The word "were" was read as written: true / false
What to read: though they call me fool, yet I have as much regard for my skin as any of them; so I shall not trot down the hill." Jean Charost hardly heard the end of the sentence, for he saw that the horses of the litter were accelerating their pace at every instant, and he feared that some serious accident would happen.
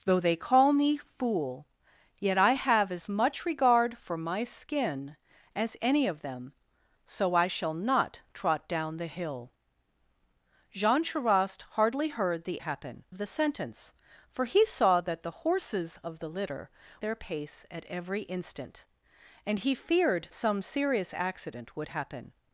false